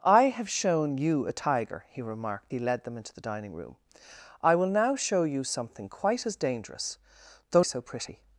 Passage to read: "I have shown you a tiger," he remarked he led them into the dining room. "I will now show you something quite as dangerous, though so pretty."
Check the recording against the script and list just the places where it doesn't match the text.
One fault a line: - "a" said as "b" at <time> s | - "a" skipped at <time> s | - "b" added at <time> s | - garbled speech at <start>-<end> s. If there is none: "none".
none